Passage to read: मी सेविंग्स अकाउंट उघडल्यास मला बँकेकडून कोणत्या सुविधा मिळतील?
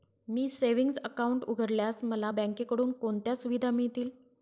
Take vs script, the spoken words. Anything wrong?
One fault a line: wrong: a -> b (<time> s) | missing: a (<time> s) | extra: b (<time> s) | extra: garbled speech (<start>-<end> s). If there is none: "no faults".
no faults